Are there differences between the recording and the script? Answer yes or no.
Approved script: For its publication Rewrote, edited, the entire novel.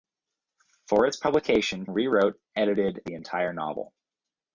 no